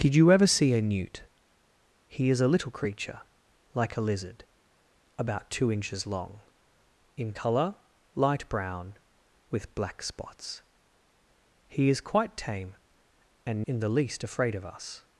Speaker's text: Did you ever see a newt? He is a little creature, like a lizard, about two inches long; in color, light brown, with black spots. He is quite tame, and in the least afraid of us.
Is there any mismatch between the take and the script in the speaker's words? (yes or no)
no